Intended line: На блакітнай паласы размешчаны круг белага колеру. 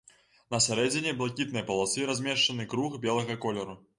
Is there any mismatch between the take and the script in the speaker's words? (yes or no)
yes